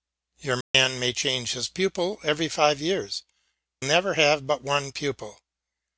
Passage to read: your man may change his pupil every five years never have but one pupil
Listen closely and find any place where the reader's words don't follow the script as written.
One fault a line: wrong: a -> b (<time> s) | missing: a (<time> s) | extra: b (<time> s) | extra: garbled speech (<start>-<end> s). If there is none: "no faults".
no faults